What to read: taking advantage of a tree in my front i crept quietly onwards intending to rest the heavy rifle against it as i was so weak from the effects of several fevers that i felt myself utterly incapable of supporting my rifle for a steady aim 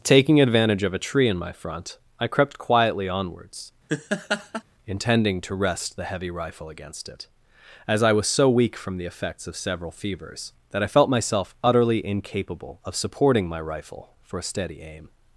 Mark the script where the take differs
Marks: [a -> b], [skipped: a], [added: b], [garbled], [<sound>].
taking advantage of a tree in my front i crept quietly onwards [laugh] intending to rest the heavy rifle against it as i was so weak from the effects of several fevers that i felt myself utterly incapable of supporting my rifle for a steady aim